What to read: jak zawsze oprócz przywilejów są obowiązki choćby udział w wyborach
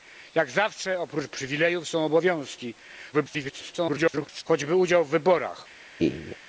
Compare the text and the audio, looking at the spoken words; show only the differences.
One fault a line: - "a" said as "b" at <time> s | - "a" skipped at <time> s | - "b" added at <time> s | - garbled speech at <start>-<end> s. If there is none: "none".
- garbled speech at 3.1-4.4 s